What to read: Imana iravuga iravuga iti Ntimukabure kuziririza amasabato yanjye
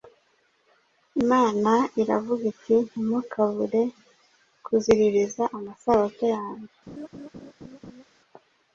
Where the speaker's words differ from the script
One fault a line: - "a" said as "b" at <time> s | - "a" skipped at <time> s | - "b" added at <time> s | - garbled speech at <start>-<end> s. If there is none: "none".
- "iravuga" skipped at 2.4 s